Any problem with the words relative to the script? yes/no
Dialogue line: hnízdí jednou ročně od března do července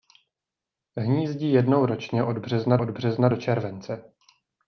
yes